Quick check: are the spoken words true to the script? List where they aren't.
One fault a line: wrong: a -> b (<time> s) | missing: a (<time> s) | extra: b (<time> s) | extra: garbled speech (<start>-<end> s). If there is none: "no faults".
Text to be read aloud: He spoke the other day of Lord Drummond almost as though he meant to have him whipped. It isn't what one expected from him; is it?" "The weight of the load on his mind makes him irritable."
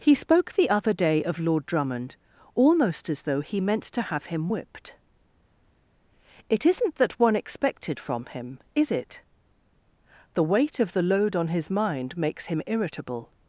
wrong: what -> that (7.0 s)